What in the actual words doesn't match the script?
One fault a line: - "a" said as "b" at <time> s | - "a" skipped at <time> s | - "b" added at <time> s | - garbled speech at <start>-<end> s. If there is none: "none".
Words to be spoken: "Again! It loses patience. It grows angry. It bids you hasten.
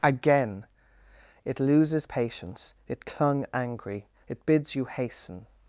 - "grows" said as "clung" at 3.0 s